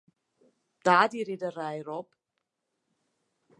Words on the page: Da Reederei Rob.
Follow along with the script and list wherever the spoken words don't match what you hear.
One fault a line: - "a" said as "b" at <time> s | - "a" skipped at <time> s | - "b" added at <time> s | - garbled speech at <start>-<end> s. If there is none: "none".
- "die" added at 1.1 s